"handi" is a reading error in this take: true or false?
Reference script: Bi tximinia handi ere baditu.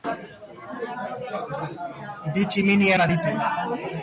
true